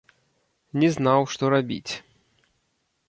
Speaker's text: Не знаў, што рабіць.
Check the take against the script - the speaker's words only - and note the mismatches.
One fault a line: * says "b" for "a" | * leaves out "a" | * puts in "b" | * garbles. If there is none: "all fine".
all fine